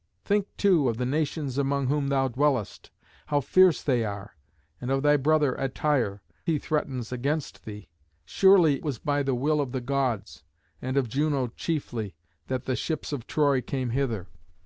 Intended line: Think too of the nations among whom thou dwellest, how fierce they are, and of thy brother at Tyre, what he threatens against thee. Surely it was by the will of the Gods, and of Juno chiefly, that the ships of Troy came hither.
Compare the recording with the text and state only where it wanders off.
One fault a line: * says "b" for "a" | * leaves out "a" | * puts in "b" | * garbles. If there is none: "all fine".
* leaves out "what"
* leaves out "it"